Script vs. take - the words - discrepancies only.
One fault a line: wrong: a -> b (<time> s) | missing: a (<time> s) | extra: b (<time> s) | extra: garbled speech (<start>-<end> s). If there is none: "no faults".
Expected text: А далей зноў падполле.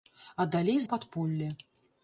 missing: зноў (0.8 s)